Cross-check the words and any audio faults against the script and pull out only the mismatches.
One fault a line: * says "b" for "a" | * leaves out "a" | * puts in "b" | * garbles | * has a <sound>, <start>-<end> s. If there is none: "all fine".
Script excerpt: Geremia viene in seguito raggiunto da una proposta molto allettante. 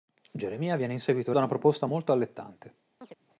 * leaves out "raggiunto"
* has a chirp, 3.0-3.2 s